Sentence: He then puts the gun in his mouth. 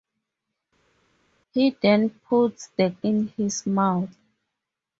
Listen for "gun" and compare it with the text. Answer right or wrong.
wrong